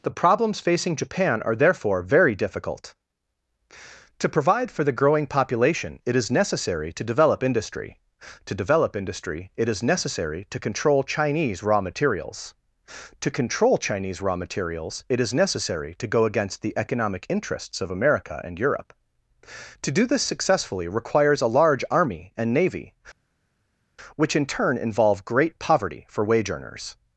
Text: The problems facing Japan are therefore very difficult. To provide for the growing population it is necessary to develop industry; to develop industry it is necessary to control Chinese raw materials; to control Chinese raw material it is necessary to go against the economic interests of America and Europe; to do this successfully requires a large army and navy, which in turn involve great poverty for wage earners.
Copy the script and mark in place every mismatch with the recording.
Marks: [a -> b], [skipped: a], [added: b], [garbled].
The problems facing Japan are therefore very difficult. To provide for the growing population it is necessary to develop industry; to develop industry it is necessary to control Chinese raw materials; to control Chinese raw [material -> materials] it is necessary to go against the economic interests of America and Europe; to do this successfully requires a large army and navy, which in turn involve great poverty for wage earners.